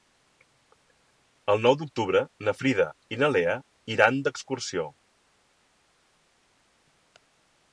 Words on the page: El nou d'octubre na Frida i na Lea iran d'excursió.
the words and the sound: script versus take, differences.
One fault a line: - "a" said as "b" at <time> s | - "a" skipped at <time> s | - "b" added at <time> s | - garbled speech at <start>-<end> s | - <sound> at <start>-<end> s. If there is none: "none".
none